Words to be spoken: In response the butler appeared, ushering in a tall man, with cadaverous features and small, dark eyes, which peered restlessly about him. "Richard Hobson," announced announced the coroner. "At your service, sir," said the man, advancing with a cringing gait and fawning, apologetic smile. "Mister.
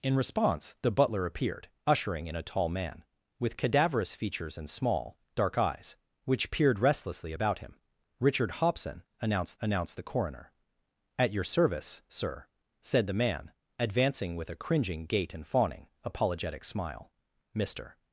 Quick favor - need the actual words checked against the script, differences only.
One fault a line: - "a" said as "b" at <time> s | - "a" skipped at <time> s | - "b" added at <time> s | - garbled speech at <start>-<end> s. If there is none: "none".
none